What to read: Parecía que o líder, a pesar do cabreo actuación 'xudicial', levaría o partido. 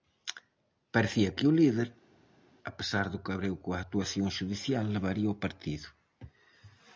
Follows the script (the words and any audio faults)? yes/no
no